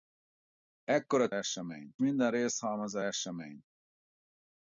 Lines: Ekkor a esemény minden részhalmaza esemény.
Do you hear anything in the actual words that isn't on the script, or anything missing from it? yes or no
no